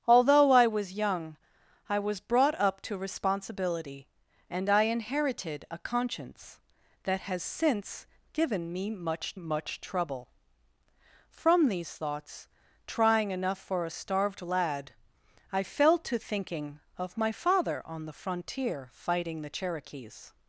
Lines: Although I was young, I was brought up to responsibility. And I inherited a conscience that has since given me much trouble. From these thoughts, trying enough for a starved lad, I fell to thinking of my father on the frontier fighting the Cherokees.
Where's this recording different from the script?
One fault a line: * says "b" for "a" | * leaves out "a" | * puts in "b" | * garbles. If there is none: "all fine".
* puts in "much"